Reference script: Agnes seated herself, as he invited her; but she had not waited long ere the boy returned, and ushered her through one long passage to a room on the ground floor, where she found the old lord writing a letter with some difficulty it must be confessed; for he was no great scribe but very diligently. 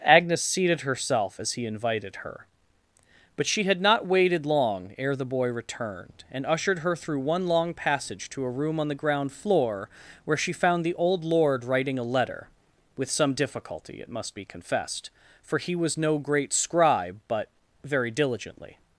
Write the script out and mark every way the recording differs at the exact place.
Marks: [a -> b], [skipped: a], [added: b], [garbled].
Agnes seated herself, as he invited her; but she had not waited long ere the boy returned, and ushered her through one long passage to a room on the ground floor, where she found the old lord writing a letter with some difficulty it must be confessed; for he was no great scribe but very diligently.